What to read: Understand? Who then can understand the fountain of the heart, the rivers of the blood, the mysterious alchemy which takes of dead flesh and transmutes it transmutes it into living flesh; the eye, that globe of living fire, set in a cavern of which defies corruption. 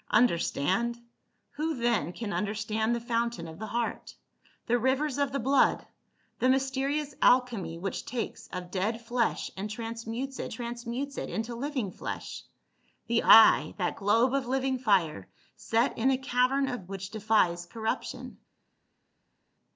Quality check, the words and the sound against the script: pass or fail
pass